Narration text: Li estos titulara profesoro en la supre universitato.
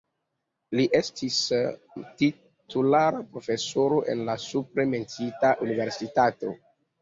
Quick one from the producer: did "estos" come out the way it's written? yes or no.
no